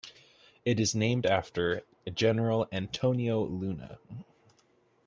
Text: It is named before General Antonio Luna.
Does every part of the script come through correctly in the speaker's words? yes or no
no